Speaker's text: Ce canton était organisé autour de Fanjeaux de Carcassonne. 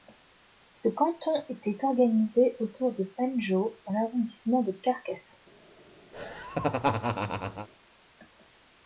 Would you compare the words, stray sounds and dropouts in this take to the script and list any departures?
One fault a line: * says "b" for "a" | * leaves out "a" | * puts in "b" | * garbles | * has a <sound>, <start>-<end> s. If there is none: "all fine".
* puts in "dans l'arrondissement"
* has a laugh, 6.1-7.7 s